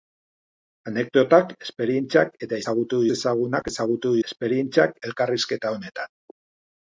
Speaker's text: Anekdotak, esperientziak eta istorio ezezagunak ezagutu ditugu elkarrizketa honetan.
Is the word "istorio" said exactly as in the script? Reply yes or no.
no